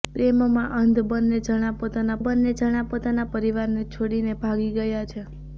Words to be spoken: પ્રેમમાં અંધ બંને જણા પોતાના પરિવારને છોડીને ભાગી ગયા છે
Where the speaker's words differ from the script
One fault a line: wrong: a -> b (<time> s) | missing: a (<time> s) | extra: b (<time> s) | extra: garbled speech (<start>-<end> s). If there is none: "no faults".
extra: બંને જણા પોતાના (2.2 s)